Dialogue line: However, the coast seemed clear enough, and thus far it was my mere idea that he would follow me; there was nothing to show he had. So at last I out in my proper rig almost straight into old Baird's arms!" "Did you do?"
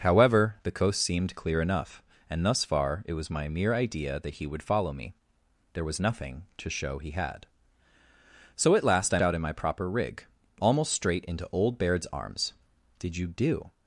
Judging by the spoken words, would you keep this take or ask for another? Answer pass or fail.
pass